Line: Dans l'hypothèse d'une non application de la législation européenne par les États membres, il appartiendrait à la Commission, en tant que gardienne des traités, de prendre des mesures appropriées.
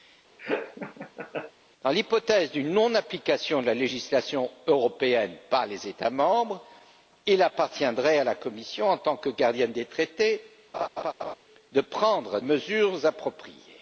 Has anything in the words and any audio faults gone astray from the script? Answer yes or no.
yes